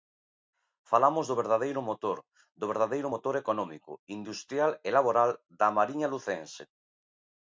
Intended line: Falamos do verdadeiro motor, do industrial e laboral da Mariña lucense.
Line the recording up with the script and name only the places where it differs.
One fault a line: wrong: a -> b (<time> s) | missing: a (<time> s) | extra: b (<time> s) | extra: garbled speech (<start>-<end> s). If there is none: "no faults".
extra: verdadeiro motor económico (2.7 s)